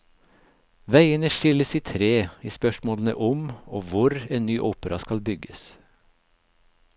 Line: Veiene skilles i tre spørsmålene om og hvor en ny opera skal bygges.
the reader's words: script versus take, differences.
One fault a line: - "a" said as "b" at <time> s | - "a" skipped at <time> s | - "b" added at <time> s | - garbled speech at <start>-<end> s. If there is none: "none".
- "i" added at 2.4 s